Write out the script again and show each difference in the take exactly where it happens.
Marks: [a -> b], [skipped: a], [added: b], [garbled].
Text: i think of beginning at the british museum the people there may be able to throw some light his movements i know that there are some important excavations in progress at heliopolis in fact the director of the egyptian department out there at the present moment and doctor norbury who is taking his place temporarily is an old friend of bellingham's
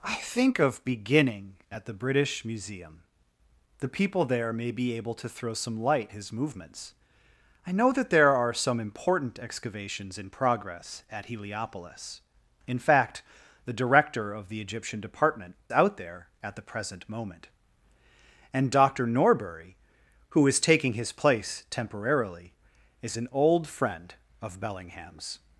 i think of beginning at the british museum the people there may be able to throw some light his movements i know that there are some important excavations in progress at heliopolis in fact the director of the egyptian department out there at the present moment and doctor norbury who is taking his place temporarily is an old friend of bellingham's